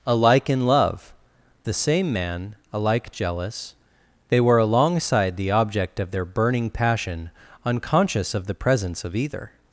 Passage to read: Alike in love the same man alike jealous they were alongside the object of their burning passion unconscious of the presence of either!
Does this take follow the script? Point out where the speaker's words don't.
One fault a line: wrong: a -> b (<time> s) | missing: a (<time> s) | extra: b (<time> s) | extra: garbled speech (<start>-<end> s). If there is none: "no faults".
no faults